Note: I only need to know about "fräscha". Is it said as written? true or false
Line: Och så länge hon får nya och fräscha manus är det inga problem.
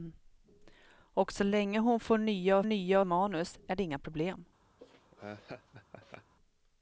false